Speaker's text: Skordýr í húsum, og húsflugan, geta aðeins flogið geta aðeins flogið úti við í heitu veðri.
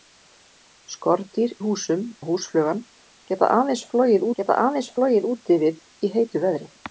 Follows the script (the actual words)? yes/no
yes